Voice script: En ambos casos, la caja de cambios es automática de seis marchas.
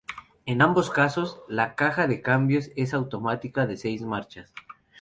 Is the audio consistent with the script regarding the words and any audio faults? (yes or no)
yes